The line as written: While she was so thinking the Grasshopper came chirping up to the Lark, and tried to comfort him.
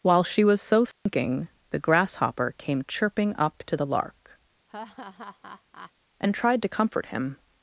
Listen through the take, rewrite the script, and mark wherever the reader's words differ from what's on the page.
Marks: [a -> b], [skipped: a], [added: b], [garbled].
While she was so thinking the Grasshopper came chirping up to the Lark, and tried to comfort him.